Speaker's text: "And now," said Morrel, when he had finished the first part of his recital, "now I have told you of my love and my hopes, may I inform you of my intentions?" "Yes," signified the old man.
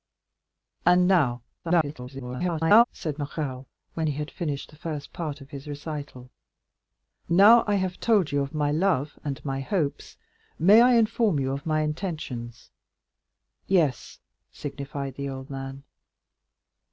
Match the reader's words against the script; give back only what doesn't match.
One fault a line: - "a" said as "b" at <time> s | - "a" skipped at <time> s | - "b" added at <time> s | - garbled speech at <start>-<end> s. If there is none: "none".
- garbled speech at 1.6-2.8 s